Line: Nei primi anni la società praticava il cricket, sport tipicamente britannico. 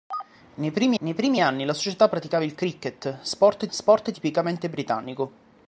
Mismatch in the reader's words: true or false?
true